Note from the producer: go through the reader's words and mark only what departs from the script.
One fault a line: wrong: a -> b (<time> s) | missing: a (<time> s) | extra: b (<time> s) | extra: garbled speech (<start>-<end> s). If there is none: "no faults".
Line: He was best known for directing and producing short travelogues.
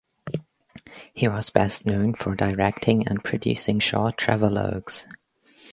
no faults